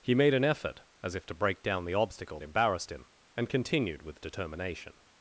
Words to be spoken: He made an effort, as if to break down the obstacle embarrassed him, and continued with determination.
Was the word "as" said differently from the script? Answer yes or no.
no